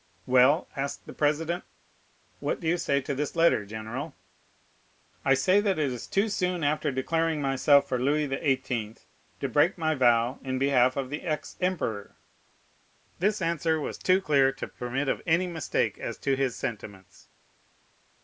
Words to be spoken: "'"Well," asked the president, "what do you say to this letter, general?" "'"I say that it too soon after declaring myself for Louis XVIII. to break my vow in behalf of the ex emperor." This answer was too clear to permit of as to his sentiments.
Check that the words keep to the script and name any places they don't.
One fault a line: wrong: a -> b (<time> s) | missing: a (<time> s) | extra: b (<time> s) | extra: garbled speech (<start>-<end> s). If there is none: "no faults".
extra: is (5.9 s)
extra: any mistake (15.3 s)